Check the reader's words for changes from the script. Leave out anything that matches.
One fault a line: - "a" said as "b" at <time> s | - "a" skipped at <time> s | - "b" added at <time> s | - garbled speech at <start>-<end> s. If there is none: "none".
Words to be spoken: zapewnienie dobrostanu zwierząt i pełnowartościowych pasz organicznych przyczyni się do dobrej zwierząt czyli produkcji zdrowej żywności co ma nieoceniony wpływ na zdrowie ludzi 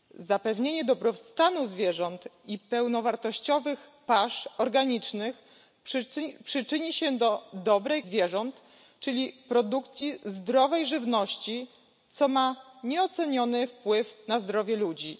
none